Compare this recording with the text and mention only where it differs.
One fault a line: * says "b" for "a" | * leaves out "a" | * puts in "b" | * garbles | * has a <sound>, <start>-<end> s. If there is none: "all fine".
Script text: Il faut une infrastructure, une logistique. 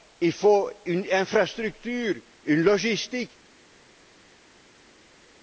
all fine